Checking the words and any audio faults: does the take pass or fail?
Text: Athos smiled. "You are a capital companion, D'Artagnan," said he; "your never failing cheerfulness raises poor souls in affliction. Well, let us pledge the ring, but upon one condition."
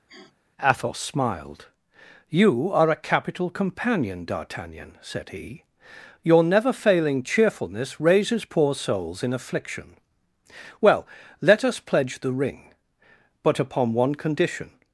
fail